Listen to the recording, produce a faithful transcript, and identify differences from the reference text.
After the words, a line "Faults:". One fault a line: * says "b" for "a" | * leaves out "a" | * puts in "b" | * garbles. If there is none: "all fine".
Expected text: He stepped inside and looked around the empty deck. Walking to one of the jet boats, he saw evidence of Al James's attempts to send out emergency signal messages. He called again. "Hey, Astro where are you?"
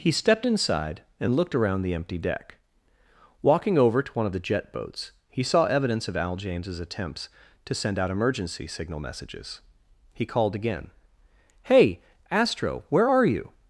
He stepped inside and looked around the empty deck. Walking over to one of the jet boats, he saw evidence of Al James's attempts to send out emergency signal messages. He called again. "Hey, Astro where are you?"
Faults:
* puts in "over"